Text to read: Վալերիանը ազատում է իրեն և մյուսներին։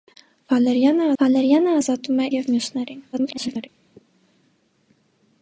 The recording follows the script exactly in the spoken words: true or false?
false